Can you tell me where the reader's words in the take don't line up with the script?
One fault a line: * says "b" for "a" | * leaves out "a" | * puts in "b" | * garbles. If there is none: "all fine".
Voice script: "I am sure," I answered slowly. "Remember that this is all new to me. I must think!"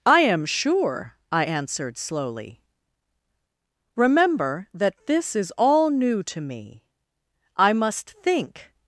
all fine